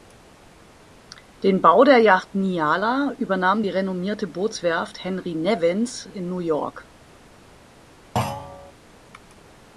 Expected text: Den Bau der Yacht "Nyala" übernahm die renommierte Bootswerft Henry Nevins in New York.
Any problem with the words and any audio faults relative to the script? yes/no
yes